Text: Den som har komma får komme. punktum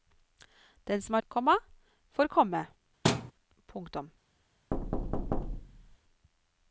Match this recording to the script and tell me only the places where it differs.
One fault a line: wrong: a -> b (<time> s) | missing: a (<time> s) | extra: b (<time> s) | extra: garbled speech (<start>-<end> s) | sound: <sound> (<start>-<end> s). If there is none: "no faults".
sound: thud (3.0-3.3 s)
sound: thud (4.7-6.0 s)